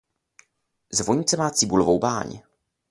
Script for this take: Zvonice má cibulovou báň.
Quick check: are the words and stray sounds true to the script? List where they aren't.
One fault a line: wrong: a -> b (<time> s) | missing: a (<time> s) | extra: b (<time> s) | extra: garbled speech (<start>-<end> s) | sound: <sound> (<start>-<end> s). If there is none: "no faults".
no faults